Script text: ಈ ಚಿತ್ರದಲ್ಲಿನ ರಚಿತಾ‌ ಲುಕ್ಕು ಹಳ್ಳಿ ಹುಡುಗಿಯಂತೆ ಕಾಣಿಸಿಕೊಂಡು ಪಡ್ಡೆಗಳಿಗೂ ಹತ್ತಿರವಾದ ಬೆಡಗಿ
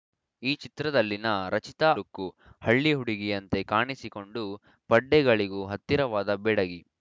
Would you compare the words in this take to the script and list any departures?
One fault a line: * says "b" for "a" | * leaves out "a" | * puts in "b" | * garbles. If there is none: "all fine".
all fine